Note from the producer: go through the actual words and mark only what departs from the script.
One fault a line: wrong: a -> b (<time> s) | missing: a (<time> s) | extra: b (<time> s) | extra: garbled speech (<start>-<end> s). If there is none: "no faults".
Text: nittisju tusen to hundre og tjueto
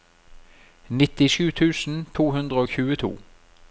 no faults